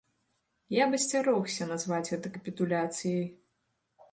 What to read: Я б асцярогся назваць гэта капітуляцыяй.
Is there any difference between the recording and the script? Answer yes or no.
no